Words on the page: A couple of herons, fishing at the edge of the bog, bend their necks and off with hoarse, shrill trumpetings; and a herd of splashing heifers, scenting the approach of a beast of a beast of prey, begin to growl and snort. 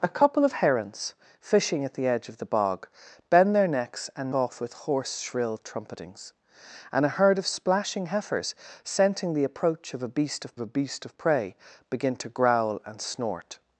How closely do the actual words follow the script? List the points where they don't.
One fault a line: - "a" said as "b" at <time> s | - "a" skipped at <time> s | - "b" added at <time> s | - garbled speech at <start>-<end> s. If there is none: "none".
none